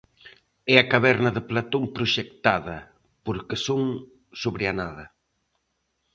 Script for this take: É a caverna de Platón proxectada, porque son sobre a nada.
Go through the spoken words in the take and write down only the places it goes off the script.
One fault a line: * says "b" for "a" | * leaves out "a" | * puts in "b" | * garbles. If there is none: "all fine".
all fine